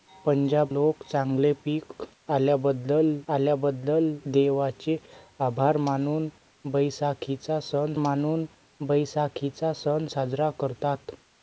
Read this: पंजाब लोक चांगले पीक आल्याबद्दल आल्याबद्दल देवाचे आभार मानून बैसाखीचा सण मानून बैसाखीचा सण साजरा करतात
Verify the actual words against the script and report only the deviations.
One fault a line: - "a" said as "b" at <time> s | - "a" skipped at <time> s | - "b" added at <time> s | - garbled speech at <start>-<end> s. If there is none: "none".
none